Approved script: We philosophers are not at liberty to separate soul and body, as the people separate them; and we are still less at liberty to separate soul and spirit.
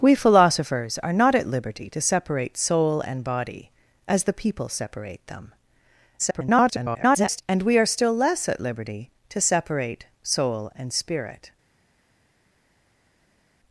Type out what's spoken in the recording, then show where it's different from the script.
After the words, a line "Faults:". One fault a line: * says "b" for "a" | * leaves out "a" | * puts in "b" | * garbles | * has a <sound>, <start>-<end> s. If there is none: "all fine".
We philosophers are not at liberty to separate soul and body, as the people separate them; [garbled] and we are still less at liberty to separate soul and spirit.
Faults:
* garbles